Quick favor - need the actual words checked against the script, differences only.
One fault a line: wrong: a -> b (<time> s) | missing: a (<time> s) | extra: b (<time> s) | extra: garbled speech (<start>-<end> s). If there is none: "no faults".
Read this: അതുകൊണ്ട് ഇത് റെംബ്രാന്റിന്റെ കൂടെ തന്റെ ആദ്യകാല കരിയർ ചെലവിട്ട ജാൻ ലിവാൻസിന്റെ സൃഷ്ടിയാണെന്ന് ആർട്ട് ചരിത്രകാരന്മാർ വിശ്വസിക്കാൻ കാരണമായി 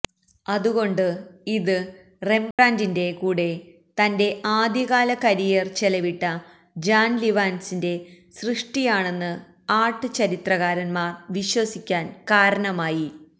no faults